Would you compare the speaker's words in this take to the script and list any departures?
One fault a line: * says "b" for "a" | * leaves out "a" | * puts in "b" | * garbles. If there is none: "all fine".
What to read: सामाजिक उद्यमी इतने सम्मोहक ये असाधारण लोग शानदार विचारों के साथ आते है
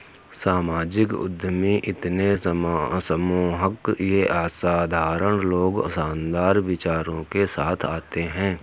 all fine